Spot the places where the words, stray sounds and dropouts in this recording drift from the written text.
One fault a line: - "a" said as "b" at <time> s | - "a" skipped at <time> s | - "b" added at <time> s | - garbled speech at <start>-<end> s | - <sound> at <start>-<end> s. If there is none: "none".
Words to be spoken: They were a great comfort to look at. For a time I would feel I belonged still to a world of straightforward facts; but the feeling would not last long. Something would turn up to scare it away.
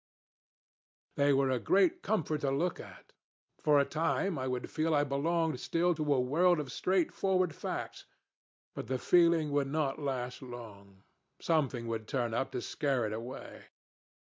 none